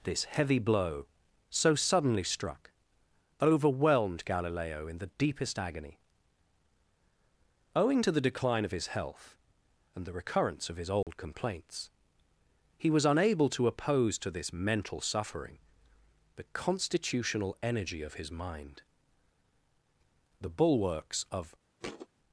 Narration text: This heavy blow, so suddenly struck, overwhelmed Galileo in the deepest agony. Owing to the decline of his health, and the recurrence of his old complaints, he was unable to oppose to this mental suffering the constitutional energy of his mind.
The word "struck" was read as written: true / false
true